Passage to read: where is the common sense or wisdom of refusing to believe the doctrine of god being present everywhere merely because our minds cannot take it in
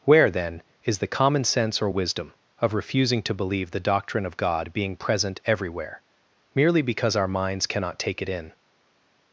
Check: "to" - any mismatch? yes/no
no